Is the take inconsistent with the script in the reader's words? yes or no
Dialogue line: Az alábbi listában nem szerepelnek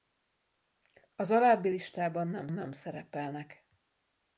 yes